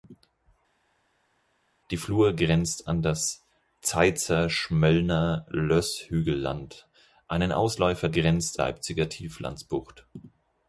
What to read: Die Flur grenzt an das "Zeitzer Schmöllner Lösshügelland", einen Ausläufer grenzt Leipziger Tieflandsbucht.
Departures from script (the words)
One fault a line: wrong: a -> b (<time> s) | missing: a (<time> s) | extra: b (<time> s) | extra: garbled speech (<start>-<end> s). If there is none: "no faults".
no faults